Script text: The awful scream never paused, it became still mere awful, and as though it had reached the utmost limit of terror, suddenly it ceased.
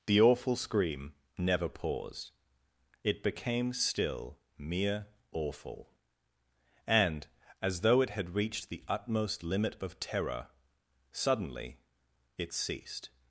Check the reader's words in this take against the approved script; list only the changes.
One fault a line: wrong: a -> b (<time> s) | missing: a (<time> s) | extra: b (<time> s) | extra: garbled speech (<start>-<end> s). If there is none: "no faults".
no faults